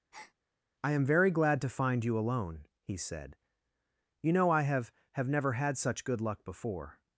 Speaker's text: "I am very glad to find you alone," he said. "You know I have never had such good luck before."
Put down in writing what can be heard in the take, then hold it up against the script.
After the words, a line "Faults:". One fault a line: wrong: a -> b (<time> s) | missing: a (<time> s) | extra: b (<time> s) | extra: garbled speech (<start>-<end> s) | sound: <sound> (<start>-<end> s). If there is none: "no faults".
"I am very glad to find you alone," he said. "You know I have have never had such good luck before."
Faults:
sound: breath (0.1-0.3 s)
extra: have (5.1 s)